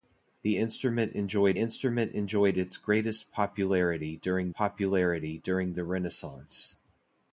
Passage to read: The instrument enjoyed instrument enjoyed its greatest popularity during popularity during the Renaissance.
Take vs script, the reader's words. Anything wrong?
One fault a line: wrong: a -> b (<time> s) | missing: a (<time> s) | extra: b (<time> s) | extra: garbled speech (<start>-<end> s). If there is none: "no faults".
no faults